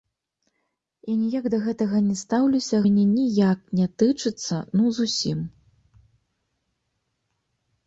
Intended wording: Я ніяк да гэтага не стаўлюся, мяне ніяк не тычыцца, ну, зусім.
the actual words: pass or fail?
pass